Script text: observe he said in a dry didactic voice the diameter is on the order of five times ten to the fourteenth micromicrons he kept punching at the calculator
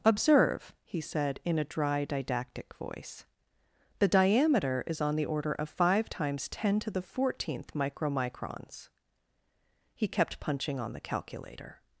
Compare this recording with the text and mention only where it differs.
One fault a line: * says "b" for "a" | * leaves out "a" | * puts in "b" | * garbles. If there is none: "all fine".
* says "on" for "at"